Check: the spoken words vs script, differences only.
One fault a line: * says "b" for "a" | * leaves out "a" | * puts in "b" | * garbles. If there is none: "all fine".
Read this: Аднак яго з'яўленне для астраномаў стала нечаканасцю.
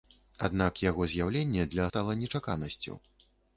* leaves out "астраномаў"